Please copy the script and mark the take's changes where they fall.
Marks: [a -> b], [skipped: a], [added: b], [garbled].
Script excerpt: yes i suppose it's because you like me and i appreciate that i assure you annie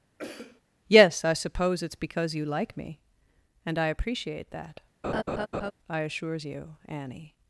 yes i suppose it's because you like me and i appreciate that i [assure -> assures] you annie